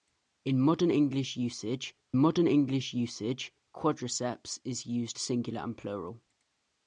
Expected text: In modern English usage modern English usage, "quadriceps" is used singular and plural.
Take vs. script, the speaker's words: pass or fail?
pass